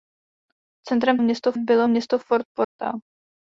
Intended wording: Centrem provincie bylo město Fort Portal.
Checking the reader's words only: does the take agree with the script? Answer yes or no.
no